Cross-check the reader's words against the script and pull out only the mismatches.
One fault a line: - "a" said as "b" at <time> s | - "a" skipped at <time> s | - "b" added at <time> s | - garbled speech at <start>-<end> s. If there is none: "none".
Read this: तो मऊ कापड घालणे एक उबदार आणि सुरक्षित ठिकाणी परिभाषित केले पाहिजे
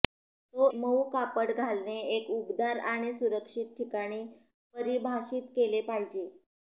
none